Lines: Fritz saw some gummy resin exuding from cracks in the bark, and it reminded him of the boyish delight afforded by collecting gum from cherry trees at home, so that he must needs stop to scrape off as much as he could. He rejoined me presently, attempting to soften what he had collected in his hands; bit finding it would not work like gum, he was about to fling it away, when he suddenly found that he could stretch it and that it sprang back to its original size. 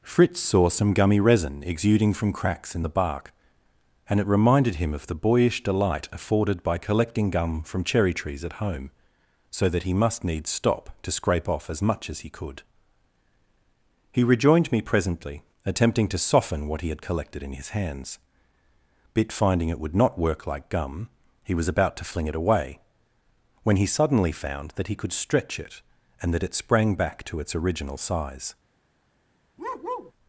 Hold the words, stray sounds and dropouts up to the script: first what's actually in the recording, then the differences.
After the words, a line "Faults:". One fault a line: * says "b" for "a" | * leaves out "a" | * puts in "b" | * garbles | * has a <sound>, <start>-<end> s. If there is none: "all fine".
Fritz saw some gummy resin exuding from cracks in the bark, and it reminded him of the boyish delight afforded by collecting gum from cherry trees at home, so that he must needs stop to scrape off as much as he could. He rejoined me presently, attempting to soften what he had collected in his hands; bit finding it would not work like gum, he was about to fling it away, when he suddenly found that he could stretch it and that it sprang back to its original size.
Faults:
* has a bark, 29.6-30.1 s